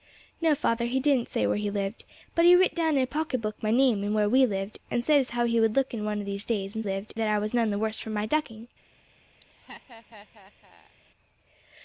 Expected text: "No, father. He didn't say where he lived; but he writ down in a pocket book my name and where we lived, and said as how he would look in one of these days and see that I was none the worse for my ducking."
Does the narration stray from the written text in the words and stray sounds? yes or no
yes